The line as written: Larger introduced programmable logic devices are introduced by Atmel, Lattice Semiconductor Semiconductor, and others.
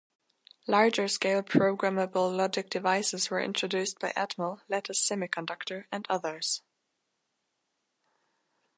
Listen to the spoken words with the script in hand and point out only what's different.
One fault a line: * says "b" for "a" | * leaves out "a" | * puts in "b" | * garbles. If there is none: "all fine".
* says "scale" for "introduced"
* says "were" for "are"
* leaves out "Semiconductor"